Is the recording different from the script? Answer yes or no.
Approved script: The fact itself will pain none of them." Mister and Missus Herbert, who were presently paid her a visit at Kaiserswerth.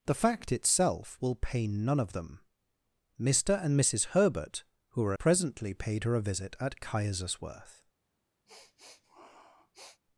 no